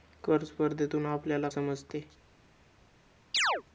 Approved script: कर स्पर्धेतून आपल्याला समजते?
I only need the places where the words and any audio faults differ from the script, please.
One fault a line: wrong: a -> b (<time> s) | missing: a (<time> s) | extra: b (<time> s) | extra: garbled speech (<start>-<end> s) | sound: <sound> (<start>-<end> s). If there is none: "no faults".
sound: chirp (3.3-3.6 s)